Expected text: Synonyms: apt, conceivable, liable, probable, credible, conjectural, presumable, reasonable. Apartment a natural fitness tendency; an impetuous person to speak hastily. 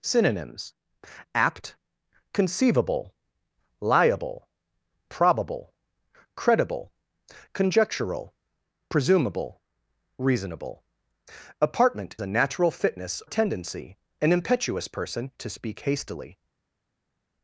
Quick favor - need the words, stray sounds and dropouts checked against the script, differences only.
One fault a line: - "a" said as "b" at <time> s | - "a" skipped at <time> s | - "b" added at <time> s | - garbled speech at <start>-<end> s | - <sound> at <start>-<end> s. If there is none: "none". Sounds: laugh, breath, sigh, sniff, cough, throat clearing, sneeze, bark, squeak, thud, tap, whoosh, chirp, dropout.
none